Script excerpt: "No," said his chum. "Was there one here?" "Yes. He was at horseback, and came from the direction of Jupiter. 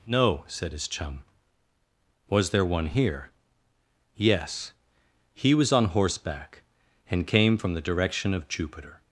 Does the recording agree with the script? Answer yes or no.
no